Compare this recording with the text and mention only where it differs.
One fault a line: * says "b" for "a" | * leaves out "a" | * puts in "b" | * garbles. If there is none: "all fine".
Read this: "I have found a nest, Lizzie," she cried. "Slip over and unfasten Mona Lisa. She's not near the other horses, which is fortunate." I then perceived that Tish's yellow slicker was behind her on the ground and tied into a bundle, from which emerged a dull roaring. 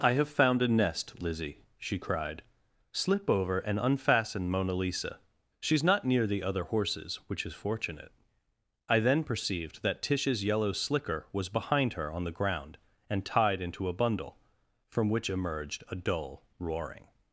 all fine